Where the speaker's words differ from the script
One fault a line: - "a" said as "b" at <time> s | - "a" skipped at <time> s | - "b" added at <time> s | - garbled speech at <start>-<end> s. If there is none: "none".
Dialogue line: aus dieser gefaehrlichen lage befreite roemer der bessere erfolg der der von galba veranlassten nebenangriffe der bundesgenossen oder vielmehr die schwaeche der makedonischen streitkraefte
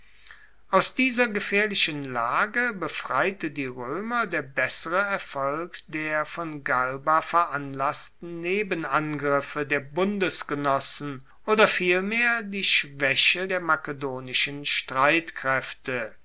- "die" added at 3.5 s
- "der" skipped at 6.2 s